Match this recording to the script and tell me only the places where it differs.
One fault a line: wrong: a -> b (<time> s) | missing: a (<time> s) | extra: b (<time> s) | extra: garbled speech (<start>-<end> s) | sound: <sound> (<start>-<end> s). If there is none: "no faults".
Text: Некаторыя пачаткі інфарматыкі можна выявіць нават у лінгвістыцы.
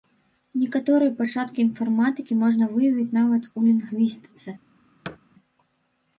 sound: thud (5.0-5.2 s)